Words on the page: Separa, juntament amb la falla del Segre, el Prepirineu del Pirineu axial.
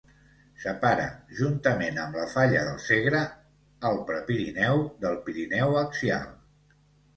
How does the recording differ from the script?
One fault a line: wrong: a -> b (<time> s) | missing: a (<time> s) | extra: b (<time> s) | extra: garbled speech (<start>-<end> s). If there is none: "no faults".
no faults